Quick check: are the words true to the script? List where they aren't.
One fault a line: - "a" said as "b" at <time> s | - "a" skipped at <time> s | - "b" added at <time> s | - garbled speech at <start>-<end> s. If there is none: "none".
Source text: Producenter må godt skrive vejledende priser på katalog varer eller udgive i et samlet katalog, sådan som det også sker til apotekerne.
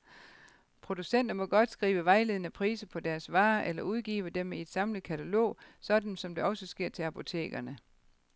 - "katalog" said as "deres" at 3.0 s
- "dem" added at 4.3 s